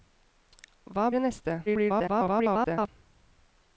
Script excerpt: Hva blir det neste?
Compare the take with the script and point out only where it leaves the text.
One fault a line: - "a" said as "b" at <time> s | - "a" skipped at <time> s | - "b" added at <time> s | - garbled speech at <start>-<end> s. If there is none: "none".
- "blir" skipped at 1.1 s
- garbled speech at 1.7-2.9 s